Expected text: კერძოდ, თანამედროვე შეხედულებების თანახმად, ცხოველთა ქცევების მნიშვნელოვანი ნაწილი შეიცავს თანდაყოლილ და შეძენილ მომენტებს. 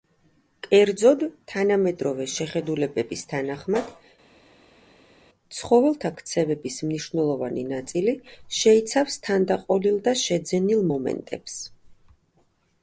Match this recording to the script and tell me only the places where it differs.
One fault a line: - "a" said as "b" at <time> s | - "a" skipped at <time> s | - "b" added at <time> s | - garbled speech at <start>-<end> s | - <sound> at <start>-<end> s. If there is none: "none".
none